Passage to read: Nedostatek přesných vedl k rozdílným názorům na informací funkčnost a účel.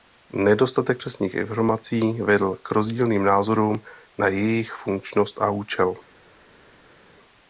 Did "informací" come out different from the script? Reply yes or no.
yes